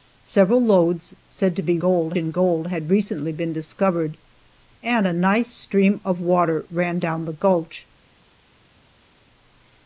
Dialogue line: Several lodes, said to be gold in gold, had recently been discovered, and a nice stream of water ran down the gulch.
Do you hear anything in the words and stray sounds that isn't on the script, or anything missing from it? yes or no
no